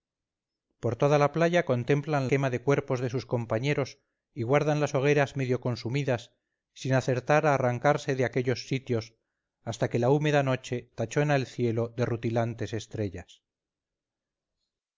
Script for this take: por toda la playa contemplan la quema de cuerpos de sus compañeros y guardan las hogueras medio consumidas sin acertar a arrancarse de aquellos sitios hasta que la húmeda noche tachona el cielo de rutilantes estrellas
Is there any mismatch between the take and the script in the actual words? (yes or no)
yes